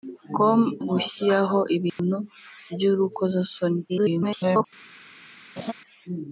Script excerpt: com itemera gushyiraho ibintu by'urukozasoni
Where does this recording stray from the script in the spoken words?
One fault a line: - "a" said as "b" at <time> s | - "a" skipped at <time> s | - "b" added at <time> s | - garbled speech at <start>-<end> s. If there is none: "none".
- "itemera" skipped at 0.6 s
- garbled speech at 3.9-4.6 s